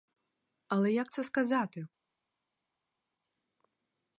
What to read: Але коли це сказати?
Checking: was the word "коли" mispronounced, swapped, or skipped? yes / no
yes